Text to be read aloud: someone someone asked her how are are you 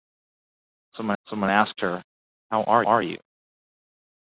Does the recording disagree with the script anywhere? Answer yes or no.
no